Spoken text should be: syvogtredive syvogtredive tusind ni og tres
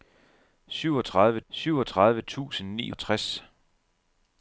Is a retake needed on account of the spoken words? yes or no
no